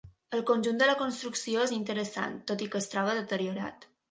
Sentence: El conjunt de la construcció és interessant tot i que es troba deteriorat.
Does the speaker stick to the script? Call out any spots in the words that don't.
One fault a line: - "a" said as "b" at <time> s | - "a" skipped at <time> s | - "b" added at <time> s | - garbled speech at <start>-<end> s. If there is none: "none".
none